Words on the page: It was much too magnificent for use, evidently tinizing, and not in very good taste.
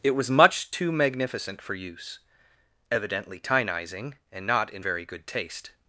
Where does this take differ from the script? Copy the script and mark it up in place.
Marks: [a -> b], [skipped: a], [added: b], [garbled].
It was much too magnificent for use, evidently tinizing, and not in very good taste.